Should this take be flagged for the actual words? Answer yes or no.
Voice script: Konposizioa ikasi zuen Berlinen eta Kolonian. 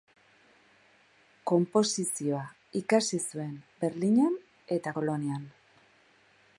no